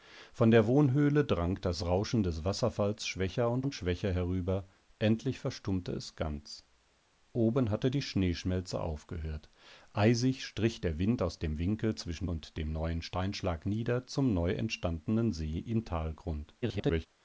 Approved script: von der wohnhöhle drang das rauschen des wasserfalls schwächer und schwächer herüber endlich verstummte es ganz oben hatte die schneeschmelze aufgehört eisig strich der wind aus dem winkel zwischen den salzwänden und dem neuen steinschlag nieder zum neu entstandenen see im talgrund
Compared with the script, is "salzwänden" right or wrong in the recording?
wrong